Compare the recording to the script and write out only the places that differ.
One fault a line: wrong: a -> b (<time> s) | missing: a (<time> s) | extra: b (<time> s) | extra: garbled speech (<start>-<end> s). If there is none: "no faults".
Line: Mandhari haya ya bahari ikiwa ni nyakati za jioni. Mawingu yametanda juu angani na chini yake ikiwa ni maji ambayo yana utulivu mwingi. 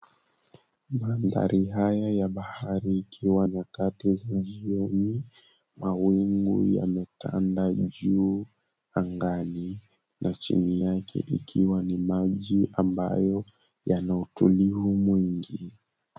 missing: ni (3.5 s)